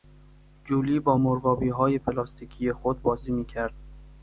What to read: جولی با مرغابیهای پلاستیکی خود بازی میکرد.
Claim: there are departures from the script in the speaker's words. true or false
false